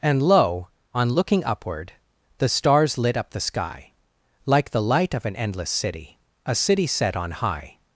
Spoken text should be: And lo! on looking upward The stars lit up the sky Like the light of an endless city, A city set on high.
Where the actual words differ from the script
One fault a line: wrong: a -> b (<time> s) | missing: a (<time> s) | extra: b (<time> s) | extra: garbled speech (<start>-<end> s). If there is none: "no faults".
no faults